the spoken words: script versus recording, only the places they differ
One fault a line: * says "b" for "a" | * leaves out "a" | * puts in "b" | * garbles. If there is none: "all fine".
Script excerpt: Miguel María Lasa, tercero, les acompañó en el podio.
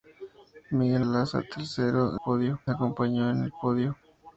* leaves out "María"
* says "podio" for "les"